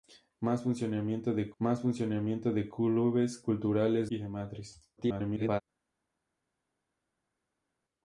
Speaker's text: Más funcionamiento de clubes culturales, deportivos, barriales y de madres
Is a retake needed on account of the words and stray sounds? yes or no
yes